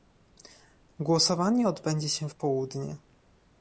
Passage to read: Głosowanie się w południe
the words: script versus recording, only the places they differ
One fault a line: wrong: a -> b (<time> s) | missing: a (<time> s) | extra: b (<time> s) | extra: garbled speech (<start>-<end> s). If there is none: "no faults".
extra: odbędzie (1.7 s)